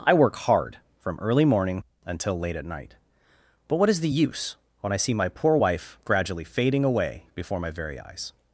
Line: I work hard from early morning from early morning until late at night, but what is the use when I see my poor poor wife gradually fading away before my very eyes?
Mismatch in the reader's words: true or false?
true